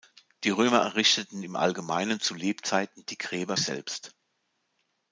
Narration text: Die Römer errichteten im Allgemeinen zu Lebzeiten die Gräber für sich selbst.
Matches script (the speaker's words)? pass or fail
fail